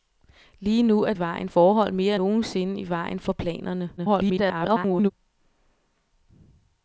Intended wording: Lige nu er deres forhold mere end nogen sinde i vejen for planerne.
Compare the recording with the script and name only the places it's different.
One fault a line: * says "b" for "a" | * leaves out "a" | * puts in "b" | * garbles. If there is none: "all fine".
* says "vejen" for "deres"
* leaves out "end"
* garbles